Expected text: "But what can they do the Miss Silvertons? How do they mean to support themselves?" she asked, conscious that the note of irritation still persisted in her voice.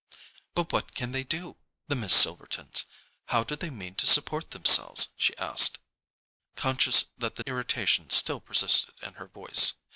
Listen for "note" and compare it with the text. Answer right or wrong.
wrong